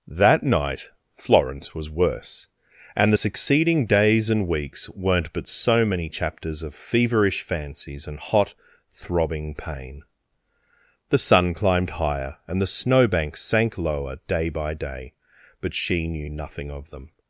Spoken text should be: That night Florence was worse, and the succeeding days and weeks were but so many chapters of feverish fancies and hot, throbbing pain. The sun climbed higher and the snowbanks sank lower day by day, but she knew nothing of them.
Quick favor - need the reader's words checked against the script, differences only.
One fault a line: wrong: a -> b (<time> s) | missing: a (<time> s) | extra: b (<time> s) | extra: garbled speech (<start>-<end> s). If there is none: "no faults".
wrong: were -> weren't (4.9 s)